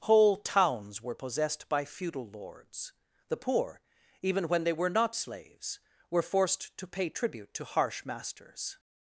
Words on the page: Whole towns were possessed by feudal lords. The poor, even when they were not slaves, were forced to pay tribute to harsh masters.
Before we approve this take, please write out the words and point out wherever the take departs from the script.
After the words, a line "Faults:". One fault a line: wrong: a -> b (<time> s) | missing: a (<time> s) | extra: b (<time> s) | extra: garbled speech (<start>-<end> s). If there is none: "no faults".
Whole towns were possessed by feudal lords. The poor, even when they were not slaves, were forced to pay tribute to harsh masters.
Faults:
no faults